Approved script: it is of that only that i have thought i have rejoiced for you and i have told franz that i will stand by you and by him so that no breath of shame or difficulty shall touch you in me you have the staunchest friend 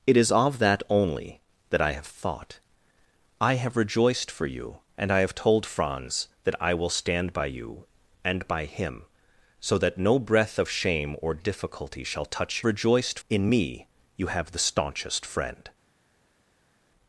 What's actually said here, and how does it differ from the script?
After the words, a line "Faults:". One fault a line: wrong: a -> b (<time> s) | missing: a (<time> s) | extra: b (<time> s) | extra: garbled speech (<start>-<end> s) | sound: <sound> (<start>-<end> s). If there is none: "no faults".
it is of that only that i have thought i have rejoiced for you and i have told franz that i will stand by you and by him so that no breath of shame or difficulty shall touch rejoiced in me you have the staunchest friend
Faults:
wrong: you -> rejoiced (12.7 s)